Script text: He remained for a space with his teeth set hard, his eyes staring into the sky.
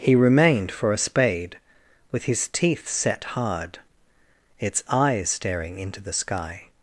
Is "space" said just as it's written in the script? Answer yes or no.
no